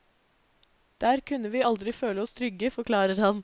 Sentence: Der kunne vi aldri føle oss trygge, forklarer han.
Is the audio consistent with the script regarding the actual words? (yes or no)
yes